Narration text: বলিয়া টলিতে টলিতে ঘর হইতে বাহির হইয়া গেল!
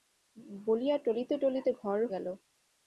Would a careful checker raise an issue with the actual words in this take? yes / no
yes